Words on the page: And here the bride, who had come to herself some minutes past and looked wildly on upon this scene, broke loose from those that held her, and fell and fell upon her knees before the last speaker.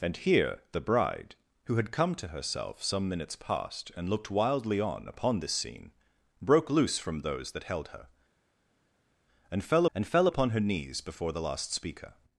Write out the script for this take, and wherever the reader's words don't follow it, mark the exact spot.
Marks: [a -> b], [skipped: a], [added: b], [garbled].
And here the bride, who had come to herself some minutes past and looked wildly on upon this scene, broke loose from those that held her, and fell and fell upon her knees before the last speaker.